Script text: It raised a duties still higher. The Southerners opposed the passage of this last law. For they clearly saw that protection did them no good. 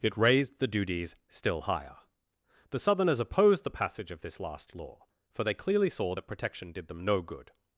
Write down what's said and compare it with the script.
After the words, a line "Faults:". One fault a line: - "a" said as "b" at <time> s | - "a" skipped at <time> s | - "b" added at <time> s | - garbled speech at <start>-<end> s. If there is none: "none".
It raised the duties still higher. The Southerners opposed the passage of this last law. For they clearly saw that protection did them no good.
Faults:
- "a" said as "the" at 0.6 s